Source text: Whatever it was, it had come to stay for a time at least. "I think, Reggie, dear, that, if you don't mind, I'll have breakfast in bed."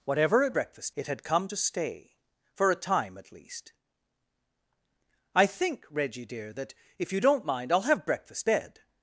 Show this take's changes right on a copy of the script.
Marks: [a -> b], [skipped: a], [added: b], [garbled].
Whatever it [was, -> breakfast] it had come to stay for a time at least. "I think, Reggie, dear, that, if you don't mind, I'll have breakfast [skipped: in] bed."